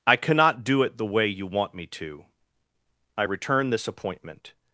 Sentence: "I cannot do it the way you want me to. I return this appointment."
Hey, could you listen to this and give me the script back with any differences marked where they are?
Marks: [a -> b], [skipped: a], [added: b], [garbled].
"I cannot do it the way you want me to. I return this appointment."